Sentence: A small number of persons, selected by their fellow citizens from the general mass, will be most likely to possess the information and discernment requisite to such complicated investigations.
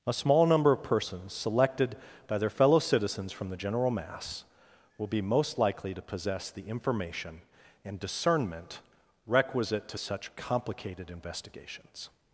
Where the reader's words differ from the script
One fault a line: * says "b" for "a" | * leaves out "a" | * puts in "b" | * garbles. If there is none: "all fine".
all fine